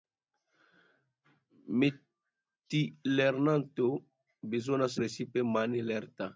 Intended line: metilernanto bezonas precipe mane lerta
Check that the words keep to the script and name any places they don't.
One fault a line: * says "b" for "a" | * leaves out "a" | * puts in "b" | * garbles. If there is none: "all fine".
all fine